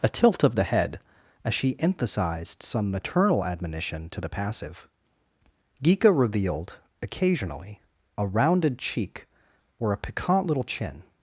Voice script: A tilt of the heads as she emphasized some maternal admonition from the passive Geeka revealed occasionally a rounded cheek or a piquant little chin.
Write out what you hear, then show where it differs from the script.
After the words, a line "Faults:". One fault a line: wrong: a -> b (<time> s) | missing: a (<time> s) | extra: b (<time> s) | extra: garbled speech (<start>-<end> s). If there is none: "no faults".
A tilt of the head as she emphasized some maternal admonition to the passive Geeka revealed occasionally a rounded cheek or a piquant little chin.
Faults:
wrong: heads -> head (0.6 s)
wrong: from -> to (4.1 s)